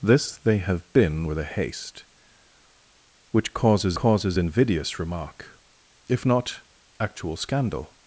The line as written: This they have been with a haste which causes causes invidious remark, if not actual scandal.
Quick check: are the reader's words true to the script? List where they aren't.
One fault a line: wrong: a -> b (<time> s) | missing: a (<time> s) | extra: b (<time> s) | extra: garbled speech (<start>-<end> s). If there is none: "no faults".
no faults